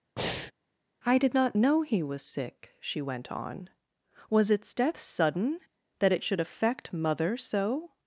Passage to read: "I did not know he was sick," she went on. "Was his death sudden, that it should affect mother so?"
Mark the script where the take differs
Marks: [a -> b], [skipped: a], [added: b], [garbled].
"I did not know he was sick," she went on. "Was [his -> its] death sudden, that it should affect mother so?"